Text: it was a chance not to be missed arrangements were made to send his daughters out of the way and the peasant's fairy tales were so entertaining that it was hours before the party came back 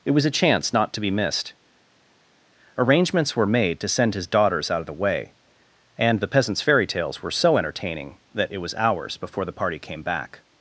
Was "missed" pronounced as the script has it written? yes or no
yes